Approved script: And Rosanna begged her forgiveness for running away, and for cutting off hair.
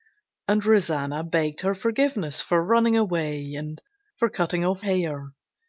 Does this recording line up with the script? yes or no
yes